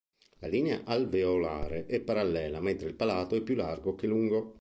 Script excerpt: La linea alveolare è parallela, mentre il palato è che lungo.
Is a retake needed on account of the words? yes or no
yes